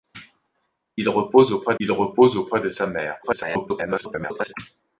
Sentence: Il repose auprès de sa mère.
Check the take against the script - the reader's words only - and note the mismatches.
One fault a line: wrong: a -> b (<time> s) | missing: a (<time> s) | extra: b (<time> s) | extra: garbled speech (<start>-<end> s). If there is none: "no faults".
extra: il repose auprès (1.8 s)
extra: garbled speech (3.2-4.5 s)